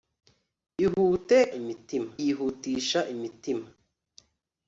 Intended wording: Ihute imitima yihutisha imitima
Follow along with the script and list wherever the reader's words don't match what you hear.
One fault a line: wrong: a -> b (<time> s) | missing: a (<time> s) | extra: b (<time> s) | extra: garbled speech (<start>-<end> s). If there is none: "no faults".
no faults